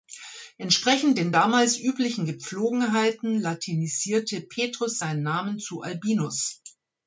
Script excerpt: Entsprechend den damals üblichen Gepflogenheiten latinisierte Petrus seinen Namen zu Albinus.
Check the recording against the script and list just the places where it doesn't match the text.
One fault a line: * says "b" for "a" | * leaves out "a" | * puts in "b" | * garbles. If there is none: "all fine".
all fine